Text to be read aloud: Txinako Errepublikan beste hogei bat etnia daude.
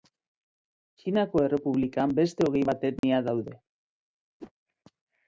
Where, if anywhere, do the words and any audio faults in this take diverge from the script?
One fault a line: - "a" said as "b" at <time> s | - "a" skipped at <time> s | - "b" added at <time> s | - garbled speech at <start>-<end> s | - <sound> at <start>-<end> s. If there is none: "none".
- dropout at 3.0-3.0 s
- whoosh at 4.4-4.5 s